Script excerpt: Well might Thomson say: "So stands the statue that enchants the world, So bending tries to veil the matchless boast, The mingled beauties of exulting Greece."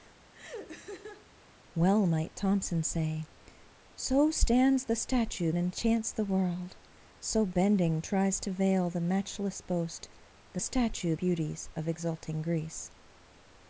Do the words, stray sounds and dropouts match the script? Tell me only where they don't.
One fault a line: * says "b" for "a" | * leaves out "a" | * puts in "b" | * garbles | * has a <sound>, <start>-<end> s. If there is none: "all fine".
* has a laugh, 0.3-1.3 s
* leaves out "that"
* says "statue" for "mingled"